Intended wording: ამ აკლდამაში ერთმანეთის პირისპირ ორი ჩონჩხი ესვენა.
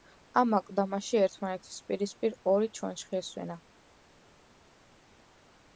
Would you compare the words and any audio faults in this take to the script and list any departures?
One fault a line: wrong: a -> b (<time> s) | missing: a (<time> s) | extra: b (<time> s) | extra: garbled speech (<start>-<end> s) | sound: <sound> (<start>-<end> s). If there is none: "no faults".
no faults